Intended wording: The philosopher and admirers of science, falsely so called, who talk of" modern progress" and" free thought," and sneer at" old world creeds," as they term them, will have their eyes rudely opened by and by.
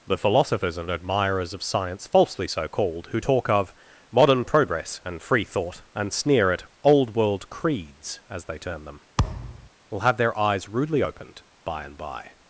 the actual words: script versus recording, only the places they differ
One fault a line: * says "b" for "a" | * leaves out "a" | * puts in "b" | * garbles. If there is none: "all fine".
* says "philosophers" for "philosopher"